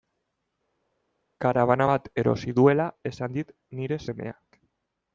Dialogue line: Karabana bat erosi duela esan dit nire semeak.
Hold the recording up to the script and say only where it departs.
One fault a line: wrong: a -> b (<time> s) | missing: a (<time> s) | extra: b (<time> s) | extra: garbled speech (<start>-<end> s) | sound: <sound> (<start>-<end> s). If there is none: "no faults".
no faults